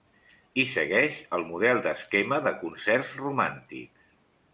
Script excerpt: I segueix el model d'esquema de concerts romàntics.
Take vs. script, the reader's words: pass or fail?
pass